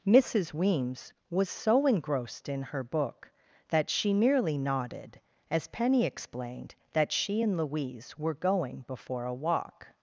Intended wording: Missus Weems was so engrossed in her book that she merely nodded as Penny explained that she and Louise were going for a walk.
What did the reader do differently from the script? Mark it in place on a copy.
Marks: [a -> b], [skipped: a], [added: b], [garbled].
Missus Weems was so engrossed in her book that she merely nodded as Penny explained that she and Louise were going [for -> before] a walk.